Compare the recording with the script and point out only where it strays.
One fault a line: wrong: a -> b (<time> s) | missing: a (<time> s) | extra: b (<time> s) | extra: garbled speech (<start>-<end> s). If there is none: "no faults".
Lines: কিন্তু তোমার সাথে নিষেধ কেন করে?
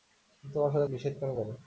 no faults